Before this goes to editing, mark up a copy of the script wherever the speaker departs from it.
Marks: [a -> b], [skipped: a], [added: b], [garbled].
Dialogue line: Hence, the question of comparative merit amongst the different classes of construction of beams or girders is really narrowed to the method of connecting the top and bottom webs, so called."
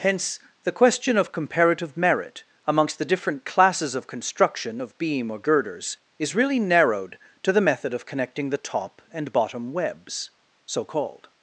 Hence, the question of comparative merit amongst the different classes of construction of [beams -> beam] or girders is really narrowed to the method of connecting the top and bottom webs, so called."